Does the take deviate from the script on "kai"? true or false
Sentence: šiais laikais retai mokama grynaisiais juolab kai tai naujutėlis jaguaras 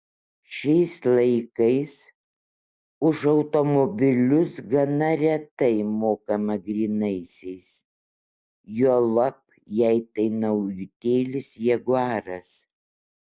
true